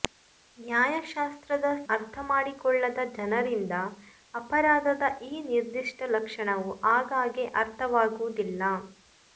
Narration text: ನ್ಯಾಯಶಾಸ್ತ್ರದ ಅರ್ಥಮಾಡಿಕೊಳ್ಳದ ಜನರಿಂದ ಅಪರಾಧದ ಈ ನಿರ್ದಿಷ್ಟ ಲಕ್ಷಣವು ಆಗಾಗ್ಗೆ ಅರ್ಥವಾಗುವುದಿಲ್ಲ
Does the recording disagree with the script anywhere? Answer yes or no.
no